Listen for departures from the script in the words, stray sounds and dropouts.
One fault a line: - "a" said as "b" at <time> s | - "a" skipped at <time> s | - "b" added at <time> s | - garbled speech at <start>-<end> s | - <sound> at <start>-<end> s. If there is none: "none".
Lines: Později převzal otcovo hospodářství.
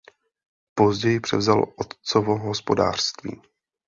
none